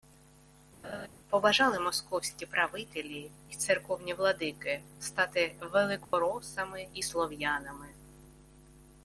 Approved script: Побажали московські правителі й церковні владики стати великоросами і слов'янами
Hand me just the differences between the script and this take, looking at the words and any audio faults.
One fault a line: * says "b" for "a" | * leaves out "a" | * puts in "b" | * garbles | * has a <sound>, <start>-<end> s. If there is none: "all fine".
* has a laugh, 0.8-1.1 s
* has a dropout, 6.0-6.1 s